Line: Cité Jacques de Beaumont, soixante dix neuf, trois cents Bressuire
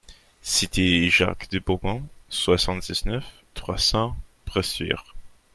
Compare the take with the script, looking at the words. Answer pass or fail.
pass